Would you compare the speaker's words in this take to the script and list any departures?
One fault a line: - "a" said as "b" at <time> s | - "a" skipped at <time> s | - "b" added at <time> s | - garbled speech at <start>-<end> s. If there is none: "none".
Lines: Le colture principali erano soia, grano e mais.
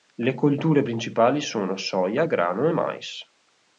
- "erano" said as "sono" at 1.4 s